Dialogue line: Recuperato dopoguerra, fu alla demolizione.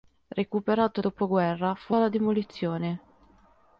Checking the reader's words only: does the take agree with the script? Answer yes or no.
yes